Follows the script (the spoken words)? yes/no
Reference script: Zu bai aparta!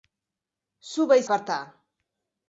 yes